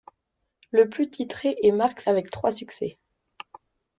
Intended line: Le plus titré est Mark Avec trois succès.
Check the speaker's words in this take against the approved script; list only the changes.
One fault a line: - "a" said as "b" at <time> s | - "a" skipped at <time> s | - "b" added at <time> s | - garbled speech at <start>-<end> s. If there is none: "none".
none